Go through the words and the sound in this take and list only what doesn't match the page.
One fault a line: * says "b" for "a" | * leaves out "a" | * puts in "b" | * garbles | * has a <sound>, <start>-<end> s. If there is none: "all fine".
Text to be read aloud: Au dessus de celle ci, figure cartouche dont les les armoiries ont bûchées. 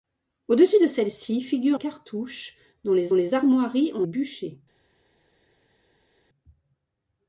all fine